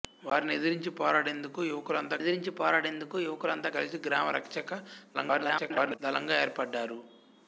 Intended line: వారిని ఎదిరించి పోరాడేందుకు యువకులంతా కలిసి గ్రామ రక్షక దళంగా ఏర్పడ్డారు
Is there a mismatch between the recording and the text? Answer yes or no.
yes